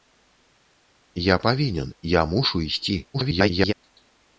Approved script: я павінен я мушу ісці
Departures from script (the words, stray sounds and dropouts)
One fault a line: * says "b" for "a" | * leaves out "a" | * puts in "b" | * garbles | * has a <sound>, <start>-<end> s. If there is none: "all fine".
* garbles